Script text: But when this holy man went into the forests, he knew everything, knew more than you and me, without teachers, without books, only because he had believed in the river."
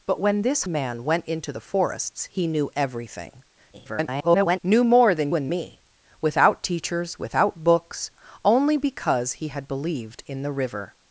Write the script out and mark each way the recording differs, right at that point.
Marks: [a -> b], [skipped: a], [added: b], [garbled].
But when this [skipped: holy] man went into the forests, he knew everything, [garbled] knew more than [skipped: you] and me, without teachers, without books, only because he had believed in the river."